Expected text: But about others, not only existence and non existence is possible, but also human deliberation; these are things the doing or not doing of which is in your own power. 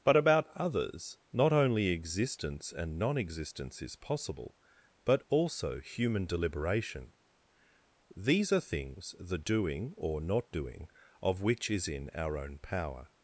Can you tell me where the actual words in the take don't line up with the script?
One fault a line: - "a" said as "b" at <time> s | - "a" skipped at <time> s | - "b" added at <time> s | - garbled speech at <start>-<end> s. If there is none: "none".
- "your" said as "our" at 12.1 s